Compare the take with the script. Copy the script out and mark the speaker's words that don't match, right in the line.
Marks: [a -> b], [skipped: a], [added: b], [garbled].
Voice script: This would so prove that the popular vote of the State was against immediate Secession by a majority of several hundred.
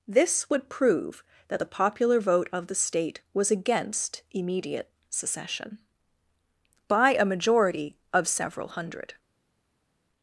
This would [skipped: so] prove that the popular vote of the State was against immediate Secession by a majority of several hundred.